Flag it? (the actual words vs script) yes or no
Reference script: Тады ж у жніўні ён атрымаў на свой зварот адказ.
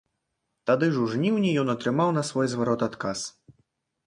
no